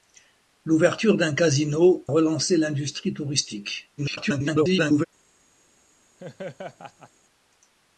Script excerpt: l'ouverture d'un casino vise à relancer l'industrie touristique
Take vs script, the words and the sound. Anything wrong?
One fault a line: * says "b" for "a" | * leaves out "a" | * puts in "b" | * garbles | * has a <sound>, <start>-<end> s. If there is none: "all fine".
* leaves out "vise à"
* garbles
* has a laugh, 6.2-7.1 s